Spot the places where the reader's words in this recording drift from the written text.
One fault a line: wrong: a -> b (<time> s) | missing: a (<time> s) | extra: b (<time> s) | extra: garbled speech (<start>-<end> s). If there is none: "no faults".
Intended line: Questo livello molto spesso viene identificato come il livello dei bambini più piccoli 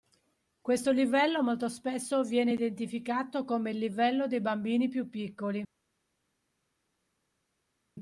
no faults